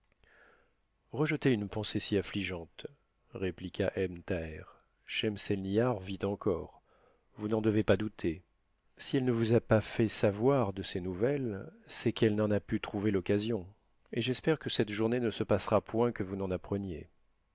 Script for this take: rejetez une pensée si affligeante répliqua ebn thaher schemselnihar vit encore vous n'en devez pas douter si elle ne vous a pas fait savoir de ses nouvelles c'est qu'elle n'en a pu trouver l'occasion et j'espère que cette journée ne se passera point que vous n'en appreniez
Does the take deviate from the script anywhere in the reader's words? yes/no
no